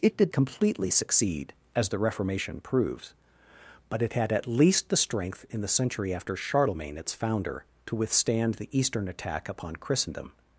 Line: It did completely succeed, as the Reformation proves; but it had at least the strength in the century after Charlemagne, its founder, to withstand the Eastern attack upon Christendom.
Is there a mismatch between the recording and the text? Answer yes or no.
no